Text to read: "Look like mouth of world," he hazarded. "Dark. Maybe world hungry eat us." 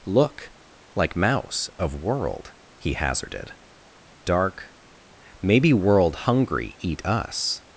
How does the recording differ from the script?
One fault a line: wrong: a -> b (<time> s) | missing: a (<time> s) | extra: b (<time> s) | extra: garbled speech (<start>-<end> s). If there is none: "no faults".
wrong: mouth -> mouse (1.1 s)